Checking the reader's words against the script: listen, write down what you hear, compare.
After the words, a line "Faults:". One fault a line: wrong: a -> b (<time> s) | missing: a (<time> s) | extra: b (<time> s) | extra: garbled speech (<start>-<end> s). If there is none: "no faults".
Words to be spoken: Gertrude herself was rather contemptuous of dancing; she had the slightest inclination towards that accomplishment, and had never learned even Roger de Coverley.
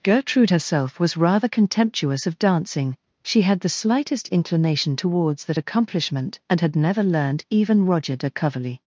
Gertrude herself was rather contemptuous of dancing; she had the slightest inclination towards that accomplishment, and had never learned even Roger de Coverley.
Faults:
no faults